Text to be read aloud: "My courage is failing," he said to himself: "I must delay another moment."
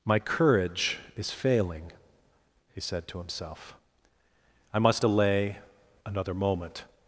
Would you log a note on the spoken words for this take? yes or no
no